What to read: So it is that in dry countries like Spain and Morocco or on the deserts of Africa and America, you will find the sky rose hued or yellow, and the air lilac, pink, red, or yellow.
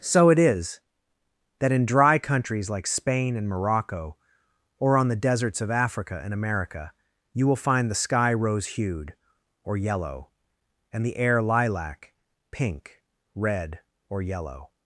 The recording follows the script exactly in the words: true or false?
true